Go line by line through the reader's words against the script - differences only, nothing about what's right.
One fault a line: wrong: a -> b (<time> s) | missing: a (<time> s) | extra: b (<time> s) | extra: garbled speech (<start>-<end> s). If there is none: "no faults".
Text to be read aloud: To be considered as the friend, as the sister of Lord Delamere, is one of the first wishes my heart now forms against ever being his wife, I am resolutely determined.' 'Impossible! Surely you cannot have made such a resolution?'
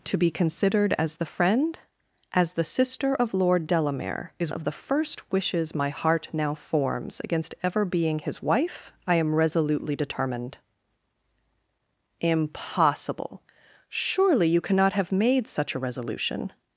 missing: one (4.5 s)